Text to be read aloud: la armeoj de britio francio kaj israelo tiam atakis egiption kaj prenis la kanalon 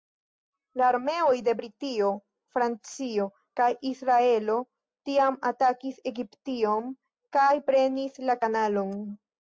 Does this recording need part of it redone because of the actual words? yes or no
no